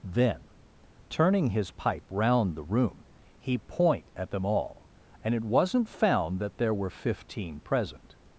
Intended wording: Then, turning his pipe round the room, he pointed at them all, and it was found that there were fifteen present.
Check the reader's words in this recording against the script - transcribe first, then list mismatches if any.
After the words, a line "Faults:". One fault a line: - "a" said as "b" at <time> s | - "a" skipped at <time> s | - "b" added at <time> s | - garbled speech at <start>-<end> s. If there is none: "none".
Then, turning his pipe round the room, he point at them all, and it wasn't found that there were fifteen present.
Faults:
- "pointed" said as "point" at 3.6 s
- "was" said as "wasn't" at 5.4 s